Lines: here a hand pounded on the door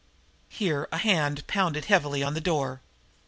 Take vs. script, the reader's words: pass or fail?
fail